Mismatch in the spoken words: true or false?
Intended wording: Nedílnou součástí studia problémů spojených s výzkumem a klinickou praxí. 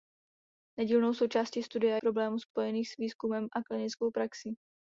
false